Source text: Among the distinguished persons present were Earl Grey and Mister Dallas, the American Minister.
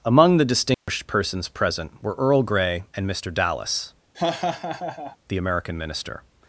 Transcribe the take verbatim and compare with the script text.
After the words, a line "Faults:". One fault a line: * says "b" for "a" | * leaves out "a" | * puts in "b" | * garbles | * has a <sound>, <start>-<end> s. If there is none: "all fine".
Among the distinguished persons present were Earl Grey and Mister Dallas, the American Minister.
Faults:
* has a dropout, 0.7-0.9 s
* has a laugh, 4.1-5.2 s